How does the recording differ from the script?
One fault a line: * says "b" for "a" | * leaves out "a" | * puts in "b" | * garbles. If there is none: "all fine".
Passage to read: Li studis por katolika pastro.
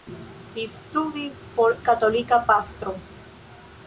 all fine